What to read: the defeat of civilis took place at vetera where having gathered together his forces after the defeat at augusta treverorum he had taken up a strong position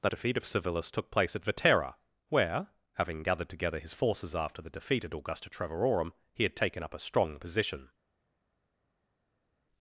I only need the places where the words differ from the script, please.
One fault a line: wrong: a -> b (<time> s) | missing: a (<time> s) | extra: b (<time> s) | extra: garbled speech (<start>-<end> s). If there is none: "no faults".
no faults